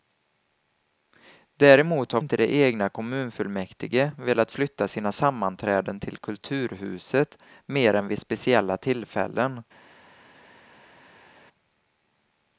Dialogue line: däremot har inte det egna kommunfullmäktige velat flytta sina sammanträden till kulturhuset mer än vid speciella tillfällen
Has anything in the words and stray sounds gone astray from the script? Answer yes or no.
no